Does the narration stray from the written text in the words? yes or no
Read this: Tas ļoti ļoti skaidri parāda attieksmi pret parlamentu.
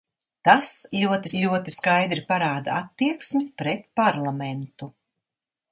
no